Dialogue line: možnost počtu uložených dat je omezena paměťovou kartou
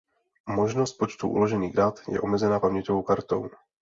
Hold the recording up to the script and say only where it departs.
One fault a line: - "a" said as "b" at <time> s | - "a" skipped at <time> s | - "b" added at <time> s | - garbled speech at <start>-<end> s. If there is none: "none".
none